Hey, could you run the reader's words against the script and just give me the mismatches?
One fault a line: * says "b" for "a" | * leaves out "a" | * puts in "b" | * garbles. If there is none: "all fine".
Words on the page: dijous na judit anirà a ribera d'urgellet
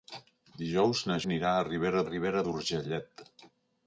* leaves out "judit"
* puts in "ribera"